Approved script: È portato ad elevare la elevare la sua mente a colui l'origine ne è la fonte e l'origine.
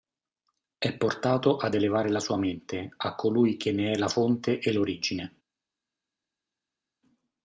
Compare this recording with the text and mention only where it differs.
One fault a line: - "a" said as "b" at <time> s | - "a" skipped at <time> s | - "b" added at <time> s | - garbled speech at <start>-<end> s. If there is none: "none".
- "elevare la" skipped at 2.2 s
- "l'origine" said as "che" at 3.6 s